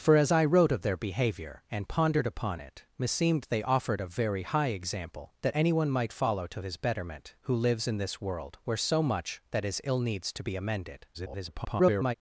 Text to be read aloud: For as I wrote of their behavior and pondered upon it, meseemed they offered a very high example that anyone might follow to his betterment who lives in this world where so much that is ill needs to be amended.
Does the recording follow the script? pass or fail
fail